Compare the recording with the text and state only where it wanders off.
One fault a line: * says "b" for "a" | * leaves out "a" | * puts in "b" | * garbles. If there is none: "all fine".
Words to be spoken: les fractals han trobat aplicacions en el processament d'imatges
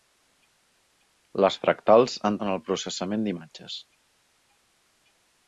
* leaves out "trobat aplicacions"